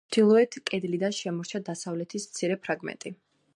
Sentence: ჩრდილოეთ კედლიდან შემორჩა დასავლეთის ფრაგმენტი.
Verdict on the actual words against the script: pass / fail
fail